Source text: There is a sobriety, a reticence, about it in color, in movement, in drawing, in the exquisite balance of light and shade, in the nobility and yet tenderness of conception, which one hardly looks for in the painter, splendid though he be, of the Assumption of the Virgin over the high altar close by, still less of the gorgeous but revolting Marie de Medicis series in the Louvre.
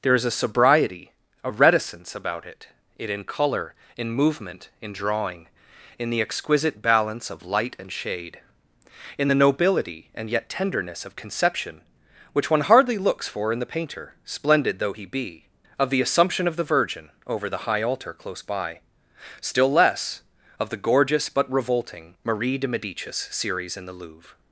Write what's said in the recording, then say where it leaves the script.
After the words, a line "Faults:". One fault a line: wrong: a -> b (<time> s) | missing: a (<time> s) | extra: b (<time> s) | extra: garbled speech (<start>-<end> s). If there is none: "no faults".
There is a sobriety, a reticence, about it it in color, in movement, in drawing, in the exquisite balance of light and shade, in the nobility and yet tenderness of conception, which one hardly looks for in the painter, splendid though he be, of the Assumption of the Virgin over the high altar close by, still less of the gorgeous but revolting Marie de Medicis series in the Louvre.
Faults:
extra: it (3.0 s)